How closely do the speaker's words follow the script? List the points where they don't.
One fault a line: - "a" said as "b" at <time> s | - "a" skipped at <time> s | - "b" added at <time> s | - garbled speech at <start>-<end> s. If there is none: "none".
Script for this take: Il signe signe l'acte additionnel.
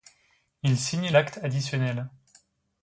- "signe" skipped at 1.1 s